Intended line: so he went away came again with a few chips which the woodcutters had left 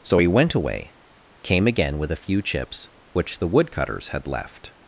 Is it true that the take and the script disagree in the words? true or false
false